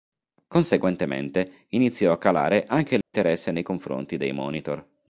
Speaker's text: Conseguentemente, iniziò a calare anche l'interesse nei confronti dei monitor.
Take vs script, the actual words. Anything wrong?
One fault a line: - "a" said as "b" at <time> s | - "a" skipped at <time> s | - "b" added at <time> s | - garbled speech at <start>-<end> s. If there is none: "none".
none